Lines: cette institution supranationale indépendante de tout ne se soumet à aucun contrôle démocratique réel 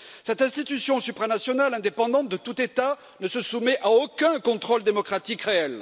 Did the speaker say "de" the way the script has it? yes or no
yes